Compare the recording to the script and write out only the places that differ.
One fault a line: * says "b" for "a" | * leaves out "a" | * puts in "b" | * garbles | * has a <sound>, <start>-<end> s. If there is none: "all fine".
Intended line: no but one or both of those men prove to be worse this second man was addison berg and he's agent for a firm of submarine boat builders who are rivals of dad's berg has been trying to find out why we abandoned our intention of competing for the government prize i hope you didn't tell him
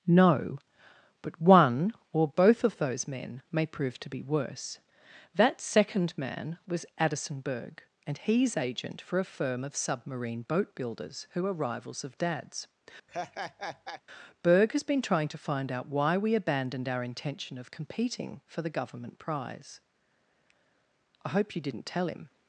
* puts in "may"
* says "that" for "this"
* has a laugh, 13.1-14.0 s